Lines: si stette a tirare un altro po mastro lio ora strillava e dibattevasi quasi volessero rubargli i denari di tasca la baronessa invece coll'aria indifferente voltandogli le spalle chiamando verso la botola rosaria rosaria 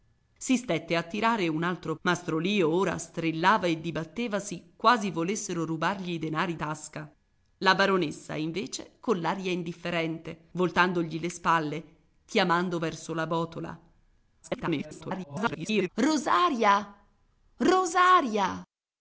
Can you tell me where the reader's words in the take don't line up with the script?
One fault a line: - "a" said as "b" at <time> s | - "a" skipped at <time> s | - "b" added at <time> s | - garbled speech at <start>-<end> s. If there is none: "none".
- "po" skipped at 1.9 s
- "di" skipped at 6.6 s
- garbled speech at 14.4-15.9 s